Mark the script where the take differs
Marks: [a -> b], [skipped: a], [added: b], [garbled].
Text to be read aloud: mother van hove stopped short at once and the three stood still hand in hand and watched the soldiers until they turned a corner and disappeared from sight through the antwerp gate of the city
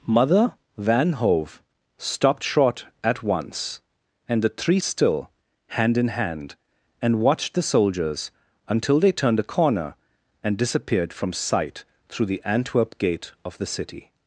mother van hove stopped short at once and the three [skipped: stood] still hand in hand and watched the soldiers until they turned a corner and disappeared from sight through the antwerp gate of the city